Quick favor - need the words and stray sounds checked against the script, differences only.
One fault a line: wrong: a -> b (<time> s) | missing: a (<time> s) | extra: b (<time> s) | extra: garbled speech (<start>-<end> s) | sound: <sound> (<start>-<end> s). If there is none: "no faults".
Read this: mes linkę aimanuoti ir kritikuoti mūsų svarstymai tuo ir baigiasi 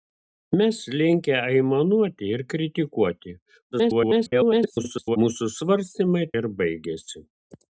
extra: garbled speech (3.7-5.2 s)
missing: tuo (6.3 s)